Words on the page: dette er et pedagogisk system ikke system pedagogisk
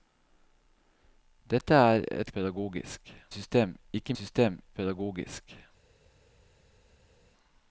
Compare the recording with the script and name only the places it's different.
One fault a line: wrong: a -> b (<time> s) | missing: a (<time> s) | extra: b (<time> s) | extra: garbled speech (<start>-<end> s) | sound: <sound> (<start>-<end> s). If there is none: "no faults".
no faults